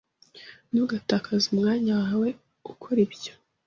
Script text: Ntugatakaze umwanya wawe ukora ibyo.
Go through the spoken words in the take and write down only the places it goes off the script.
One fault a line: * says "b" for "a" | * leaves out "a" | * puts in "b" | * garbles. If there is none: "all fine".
all fine